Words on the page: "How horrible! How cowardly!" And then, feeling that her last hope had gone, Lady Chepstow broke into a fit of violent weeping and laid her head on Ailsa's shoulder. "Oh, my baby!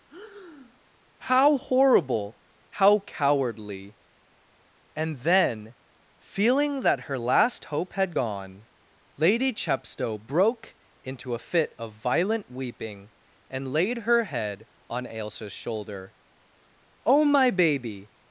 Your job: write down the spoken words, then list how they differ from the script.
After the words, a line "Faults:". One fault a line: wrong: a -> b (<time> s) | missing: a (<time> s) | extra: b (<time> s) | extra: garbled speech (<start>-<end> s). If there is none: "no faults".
"How horrible! How cowardly!" And then, feeling that her last hope had gone, Lady Chepstow broke into a fit of violent weeping and laid her head on Ailsa's shoulder. "Oh, my baby!
Faults:
no faults